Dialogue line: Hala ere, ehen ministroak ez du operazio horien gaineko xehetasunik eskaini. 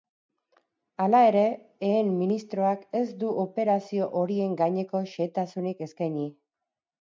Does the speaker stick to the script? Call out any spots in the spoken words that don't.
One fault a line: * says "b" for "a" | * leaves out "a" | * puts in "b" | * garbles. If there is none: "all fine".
all fine